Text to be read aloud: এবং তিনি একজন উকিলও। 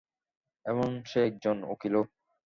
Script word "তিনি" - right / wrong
wrong